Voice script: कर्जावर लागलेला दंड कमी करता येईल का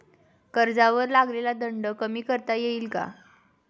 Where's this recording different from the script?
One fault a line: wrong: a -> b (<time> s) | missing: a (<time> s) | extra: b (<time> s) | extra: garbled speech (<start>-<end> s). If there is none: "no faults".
no faults